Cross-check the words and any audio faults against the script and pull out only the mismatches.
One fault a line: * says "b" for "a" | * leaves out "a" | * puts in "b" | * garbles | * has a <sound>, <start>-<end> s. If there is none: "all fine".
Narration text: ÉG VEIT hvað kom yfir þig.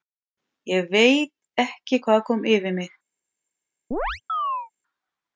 * puts in "ekki"
* says "mig" for "þig"
* has a chirp, 3.9-4.7 s